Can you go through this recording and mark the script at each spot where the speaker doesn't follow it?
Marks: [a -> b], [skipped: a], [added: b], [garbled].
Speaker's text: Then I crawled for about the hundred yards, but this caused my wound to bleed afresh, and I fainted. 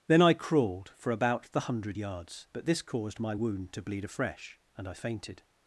Then I crawled for about the hundred yards, but this caused my wound to bleed afresh, and I fainted.